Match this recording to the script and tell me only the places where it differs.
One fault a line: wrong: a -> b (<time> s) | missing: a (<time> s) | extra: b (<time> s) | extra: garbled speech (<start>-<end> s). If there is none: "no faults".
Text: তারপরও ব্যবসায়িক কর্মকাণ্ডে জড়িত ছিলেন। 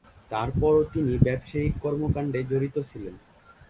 extra: তিনি (0.9 s)